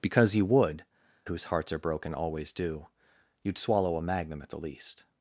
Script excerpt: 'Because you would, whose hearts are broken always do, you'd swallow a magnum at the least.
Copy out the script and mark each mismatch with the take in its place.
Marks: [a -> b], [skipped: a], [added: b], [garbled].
'Because you would, whose hearts are broken always do, you'd swallow a magnum at the least.